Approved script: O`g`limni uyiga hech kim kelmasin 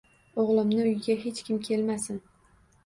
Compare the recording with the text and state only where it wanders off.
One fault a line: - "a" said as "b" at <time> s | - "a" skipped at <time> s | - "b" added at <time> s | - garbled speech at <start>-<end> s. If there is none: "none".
none